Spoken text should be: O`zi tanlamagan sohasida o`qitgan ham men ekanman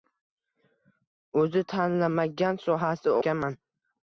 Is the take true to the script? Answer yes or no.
no